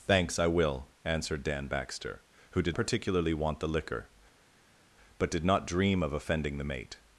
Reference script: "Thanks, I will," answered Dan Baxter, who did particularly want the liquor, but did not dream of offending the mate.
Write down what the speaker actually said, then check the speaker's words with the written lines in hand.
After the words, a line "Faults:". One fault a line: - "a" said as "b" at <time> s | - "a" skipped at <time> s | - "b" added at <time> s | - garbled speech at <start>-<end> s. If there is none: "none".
"Thanks, I will," answered Dan Baxter, who did particularly want the liquor, but did not dream of offending the mate.
Faults:
none